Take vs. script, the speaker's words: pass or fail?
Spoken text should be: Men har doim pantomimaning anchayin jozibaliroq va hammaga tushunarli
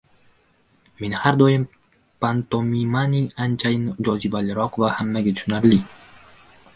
pass